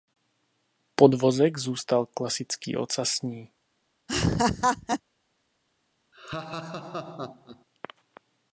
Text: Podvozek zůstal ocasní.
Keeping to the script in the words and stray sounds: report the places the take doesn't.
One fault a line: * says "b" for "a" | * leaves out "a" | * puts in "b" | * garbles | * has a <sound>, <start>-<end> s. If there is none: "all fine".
* puts in "klasický"
* has a laugh, 4.1-5.0 s
* has a laugh, 6.1-7.7 s